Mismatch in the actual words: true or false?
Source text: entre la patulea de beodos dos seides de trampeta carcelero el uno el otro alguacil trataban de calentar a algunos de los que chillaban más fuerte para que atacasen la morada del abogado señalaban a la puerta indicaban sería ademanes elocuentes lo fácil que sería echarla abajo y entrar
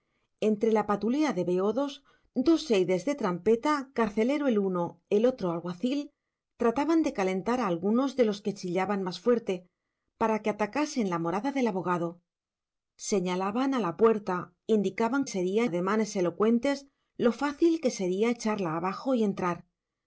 false